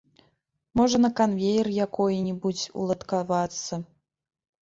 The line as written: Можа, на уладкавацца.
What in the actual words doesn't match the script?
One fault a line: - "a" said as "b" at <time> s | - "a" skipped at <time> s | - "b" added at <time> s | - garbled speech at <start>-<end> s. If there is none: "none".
- "канвеер якой небудзь" added at 1.2 s